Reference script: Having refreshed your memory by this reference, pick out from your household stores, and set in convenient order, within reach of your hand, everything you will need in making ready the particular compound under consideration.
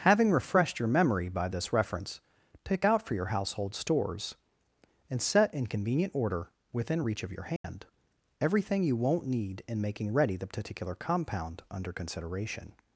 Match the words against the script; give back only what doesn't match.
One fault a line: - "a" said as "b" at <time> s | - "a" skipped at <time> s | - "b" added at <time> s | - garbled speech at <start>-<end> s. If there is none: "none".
- "from" said as "for" at 3.0 s
- "will" said as "won't" at 8.9 s